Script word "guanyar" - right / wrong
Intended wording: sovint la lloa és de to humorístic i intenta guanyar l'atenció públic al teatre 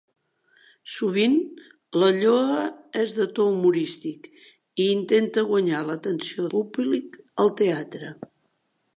right